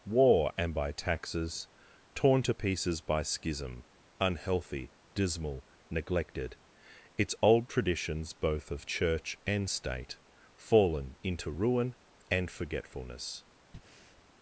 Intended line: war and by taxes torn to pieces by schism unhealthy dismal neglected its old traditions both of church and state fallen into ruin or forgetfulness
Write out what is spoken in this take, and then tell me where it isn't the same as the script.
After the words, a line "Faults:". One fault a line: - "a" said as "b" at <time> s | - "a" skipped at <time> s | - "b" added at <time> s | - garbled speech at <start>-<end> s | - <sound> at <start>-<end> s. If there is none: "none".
war and by taxes torn to pieces by schism unhealthy dismal neglected its old traditions both of church and state fallen into ruin and forgetfulness
Faults:
- "or" said as "and" at 12.3 s
- breath at 13.7-14.2 s